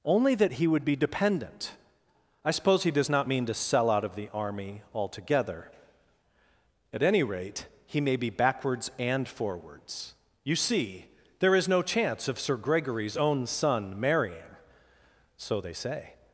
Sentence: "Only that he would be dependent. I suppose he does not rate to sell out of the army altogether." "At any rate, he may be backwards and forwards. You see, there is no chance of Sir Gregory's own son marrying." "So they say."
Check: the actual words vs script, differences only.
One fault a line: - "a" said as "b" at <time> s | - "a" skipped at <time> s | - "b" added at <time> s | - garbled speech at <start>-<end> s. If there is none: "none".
- "rate" said as "mean" at 3.3 s